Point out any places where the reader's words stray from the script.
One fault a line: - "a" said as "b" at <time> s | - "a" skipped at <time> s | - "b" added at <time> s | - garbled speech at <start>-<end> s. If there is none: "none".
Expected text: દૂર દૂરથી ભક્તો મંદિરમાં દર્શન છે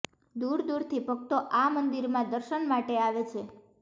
- "આ" added at 1.6 s
- "માટે આવે" added at 2.7 s